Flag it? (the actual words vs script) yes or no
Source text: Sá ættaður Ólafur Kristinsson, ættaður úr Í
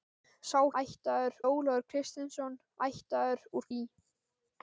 no